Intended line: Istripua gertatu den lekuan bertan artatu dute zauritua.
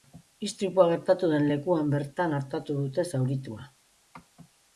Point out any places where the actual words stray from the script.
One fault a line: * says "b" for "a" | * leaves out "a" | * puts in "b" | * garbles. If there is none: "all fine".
all fine